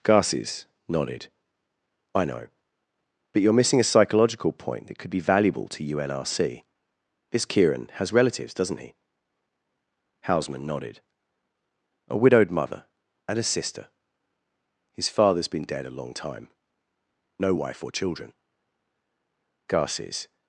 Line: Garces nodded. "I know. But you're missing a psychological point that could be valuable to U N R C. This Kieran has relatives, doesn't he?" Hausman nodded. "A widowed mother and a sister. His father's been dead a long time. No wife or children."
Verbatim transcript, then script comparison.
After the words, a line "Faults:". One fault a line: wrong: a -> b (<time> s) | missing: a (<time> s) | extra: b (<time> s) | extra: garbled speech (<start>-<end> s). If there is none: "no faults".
Garces nodded. "I know. But you're missing a psychological point that could be valuable to U N R C. This Kieran has relatives, doesn't he?" Hausman nodded. "A widowed mother and a sister. His father's been dead a long time. No wife or children." Garces
Faults:
extra: Garces (19.7 s)